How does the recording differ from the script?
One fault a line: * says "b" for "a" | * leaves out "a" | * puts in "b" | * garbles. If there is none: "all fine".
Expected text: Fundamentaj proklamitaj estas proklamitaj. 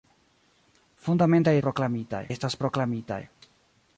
all fine